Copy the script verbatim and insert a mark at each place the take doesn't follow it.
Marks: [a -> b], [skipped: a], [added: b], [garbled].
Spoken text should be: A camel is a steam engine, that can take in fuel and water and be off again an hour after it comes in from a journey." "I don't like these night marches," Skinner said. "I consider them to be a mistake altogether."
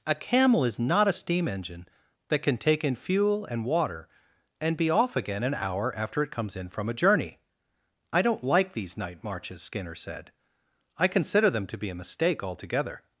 A camel is [added: not] a steam engine, that can take in fuel and water and be off again an hour after it comes in from a journey." "I don't like these night marches," Skinner said. "I consider them to be a mistake altogether."